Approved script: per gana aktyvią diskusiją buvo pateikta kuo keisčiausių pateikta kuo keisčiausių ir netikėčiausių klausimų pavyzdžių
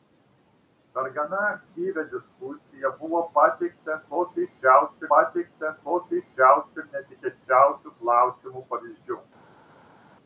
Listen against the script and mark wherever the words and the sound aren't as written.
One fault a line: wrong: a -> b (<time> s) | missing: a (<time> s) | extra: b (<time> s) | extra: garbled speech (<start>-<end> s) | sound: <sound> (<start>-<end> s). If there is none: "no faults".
no faults